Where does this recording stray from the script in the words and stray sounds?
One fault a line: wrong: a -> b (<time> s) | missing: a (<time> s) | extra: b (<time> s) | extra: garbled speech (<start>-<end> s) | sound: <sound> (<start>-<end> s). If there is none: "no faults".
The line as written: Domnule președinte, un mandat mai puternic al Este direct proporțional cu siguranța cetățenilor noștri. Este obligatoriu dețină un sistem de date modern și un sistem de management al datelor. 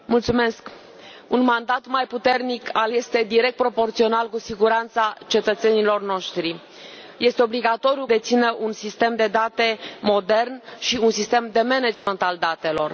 sound: dropout (11.9-12.1 s)